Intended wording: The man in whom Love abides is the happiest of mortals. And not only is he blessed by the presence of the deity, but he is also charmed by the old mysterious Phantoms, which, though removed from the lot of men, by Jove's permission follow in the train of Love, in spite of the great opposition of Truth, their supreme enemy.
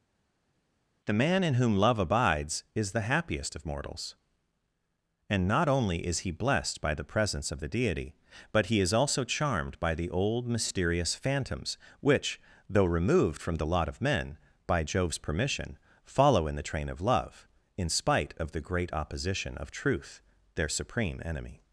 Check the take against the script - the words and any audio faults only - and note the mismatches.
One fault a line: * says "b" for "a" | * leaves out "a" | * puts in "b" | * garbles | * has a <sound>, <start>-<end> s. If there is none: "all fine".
all fine